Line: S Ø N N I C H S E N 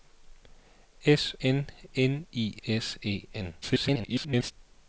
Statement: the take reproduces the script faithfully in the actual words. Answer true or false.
false